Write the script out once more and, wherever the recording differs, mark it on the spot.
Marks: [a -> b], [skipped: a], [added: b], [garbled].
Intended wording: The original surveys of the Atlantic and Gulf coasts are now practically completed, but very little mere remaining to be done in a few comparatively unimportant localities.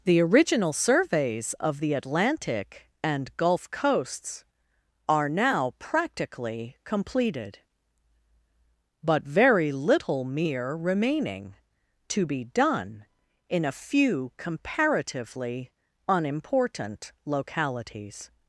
The original surveys of the Atlantic and Gulf coasts are now practically completed, but very little mere remaining to be done in a few comparatively unimportant localities.